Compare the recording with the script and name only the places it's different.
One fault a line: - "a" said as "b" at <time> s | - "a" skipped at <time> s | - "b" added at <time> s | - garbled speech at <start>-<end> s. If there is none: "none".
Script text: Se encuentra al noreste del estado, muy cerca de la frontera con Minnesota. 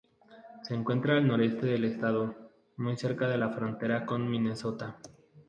none